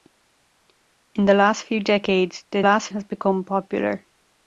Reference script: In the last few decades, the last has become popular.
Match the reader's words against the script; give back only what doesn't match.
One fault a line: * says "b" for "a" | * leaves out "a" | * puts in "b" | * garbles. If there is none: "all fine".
all fine